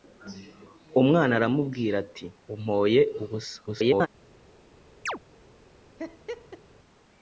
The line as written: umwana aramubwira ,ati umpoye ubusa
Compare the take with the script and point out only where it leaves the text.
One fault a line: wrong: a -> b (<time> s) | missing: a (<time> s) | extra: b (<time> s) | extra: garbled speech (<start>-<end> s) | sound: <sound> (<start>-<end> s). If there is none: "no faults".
extra: garbled speech (3.7-4.1 s)
sound: chirp (5.1-5.2 s)
sound: laugh (6.0-6.6 s)